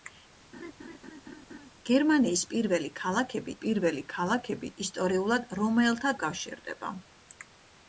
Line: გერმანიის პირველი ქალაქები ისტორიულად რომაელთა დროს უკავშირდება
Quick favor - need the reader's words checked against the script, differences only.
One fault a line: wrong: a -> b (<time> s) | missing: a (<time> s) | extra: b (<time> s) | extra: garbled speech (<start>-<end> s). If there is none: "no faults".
extra: პირველი ქალაქები (3.6 s)
missing: დროს (6.1 s)